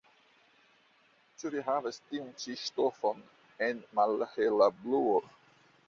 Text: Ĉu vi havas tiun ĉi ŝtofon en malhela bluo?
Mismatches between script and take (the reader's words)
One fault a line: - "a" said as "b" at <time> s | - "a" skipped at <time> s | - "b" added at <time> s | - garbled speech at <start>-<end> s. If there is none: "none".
none